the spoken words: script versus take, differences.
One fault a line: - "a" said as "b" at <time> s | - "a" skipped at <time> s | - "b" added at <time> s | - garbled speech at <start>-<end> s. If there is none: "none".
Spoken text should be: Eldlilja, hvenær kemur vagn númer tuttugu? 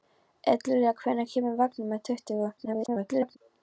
- garbled speech at 2.6-3.4 s